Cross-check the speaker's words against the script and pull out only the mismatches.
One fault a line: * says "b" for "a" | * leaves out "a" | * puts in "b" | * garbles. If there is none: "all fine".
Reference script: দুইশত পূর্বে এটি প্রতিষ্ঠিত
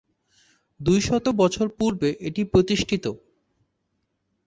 * puts in "বছর"